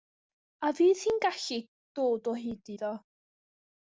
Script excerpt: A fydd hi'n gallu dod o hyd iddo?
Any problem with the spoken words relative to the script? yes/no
no